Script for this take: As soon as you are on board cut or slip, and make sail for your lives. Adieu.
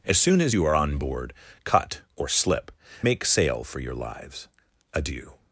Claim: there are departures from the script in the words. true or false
true